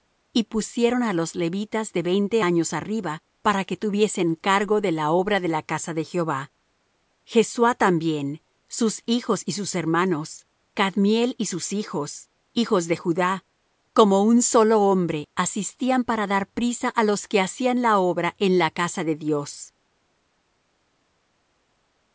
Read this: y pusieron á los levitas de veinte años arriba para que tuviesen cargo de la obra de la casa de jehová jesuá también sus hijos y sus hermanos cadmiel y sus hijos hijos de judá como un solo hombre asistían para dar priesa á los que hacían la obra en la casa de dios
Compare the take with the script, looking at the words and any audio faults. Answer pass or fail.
pass